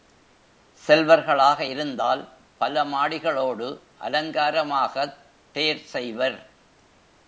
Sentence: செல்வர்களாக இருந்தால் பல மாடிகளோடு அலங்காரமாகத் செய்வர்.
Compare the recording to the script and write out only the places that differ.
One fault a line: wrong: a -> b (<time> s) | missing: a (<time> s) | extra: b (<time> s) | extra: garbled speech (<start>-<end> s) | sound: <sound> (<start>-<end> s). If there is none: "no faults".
extra: தேர் (5.5 s)